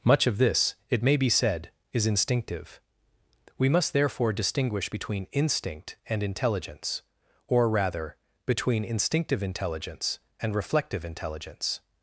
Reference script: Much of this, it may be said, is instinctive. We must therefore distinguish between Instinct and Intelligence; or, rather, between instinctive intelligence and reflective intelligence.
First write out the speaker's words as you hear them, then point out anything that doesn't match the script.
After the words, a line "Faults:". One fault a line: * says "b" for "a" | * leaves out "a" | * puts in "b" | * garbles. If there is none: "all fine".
Much of this, it may be said, is instinctive. We must therefore distinguish between Instinct and Intelligence; or, rather, between instinctive intelligence and reflective intelligence.
Faults:
all fine